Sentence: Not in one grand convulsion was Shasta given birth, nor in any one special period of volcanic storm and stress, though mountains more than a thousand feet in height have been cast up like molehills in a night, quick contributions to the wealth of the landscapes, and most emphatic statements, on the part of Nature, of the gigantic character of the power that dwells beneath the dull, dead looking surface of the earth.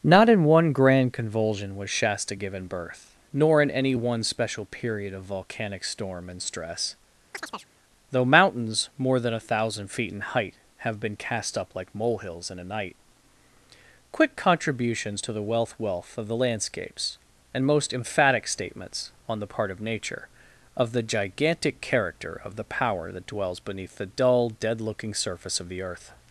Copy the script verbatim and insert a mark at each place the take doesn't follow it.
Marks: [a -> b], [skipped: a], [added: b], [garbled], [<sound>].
Not in one grand convulsion was Shasta given birth, nor in any one special period of volcanic storm and stress, [chirp] though mountains more than a thousand feet in height have been cast up like molehills in a night, quick contributions to the wealth [added: wealth] of the landscapes, and most emphatic statements, on the part of Nature, of the gigantic character of the power that dwells beneath the dull, dead looking surface of the earth.